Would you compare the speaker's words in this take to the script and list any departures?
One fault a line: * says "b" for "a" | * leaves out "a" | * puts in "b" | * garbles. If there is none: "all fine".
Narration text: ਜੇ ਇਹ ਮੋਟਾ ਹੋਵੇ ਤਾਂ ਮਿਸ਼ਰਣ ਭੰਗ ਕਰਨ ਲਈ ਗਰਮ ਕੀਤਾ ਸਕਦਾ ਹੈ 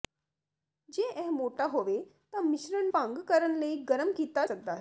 all fine